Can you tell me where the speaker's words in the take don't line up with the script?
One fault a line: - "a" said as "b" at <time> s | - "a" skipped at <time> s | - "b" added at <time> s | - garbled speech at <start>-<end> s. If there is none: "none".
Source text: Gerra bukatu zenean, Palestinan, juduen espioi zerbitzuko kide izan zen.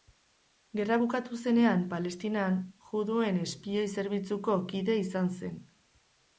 none